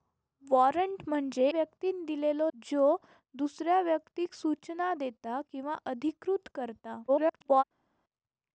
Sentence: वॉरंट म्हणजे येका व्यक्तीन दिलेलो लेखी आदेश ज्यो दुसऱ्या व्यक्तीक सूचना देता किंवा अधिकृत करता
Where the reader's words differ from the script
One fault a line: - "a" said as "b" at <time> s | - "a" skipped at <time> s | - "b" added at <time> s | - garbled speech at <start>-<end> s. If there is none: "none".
- "येका" skipped at 1.5 s
- "लेखी आदेश" skipped at 2.5 s
- garbled speech at 7.1-7.6 s